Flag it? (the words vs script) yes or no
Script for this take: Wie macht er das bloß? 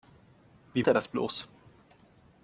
yes